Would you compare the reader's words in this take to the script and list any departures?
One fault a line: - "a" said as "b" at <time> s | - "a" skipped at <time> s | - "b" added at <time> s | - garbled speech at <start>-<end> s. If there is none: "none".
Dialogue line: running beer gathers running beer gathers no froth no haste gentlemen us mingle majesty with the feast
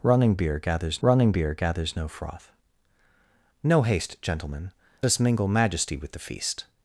none